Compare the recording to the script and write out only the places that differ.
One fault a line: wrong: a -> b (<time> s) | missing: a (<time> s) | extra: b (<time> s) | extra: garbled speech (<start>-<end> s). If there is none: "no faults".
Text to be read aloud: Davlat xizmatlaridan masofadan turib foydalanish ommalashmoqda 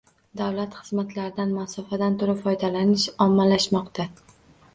no faults